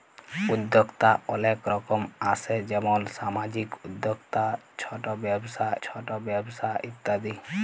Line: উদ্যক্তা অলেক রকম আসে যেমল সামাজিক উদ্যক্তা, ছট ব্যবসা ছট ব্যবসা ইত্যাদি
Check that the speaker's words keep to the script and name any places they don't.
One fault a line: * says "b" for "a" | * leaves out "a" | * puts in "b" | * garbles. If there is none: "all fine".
all fine